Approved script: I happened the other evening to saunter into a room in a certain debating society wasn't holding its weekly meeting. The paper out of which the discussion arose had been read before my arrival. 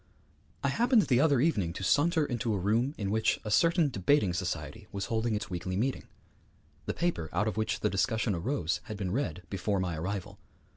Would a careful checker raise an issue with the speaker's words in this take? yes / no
yes